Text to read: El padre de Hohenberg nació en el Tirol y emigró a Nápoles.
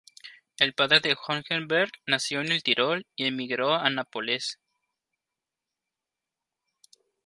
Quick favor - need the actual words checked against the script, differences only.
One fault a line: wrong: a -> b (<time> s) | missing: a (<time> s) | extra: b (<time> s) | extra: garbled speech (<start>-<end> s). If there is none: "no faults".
no faults